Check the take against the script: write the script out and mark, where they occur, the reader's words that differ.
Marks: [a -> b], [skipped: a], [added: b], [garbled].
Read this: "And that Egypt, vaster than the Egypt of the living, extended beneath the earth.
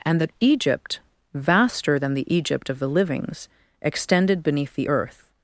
"And that Egypt, vaster than the Egypt of the [living, -> livings] extended beneath the earth.